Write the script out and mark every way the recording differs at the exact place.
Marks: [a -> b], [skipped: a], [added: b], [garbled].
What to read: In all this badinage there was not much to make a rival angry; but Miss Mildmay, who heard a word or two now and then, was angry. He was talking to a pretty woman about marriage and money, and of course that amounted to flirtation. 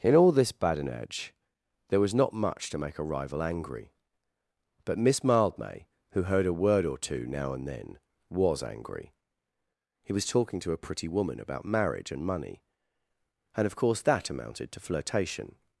In all this badinage there was not much to make a rival angry; but Miss Mildmay, who heard a word or two now and then, was angry. He was talking to a pretty woman about marriage and money, and of course that amounted to flirtation.